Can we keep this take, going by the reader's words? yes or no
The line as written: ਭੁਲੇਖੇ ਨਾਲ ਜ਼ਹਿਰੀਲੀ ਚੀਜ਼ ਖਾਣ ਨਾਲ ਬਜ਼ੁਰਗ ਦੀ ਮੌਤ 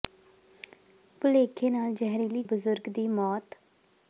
no